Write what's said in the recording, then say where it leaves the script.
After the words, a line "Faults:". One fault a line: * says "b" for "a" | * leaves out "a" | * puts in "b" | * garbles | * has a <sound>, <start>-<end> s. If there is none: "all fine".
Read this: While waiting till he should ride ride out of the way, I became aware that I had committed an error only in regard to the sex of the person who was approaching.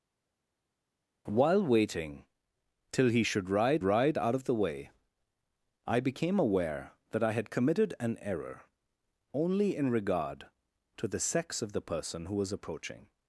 While waiting till he should ride ride out of the way, I became aware that I had committed an error only in regard to the sex of the person who was approaching.
Faults:
all fine